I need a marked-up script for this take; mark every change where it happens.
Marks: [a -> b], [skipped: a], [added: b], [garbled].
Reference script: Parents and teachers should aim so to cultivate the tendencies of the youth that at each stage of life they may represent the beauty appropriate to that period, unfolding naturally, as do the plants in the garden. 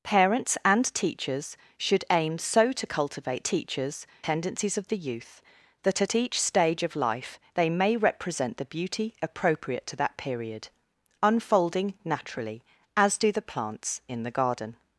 Parents and teachers should aim so to cultivate [the -> teachers] tendencies of the youth that at each stage of life they may represent the beauty appropriate to that period, unfolding naturally, as do the plants in the garden.